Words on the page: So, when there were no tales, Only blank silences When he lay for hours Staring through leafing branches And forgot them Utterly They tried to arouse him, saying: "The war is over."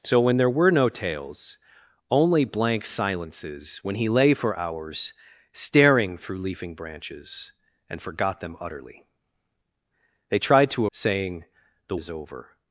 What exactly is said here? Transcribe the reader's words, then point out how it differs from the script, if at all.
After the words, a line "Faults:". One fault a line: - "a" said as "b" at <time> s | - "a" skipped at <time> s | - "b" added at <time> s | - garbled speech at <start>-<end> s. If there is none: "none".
So, when there were no tales, Only blank silences When he lay for hours Staring through leafing branches And forgot them Utterly They tried to saying: "The is over."
Faults:
- "arouse him" skipped at 10.9 s
- "war" skipped at 12.0 s